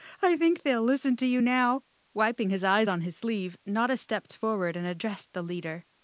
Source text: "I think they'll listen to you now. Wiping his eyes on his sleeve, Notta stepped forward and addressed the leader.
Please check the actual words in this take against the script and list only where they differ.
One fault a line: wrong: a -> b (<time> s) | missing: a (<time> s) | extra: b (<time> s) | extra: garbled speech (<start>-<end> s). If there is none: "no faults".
no faults